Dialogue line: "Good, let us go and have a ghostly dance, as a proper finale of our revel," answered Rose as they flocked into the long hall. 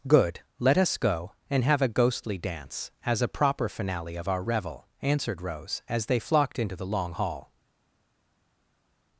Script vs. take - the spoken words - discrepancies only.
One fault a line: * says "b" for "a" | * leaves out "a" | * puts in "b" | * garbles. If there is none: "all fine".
all fine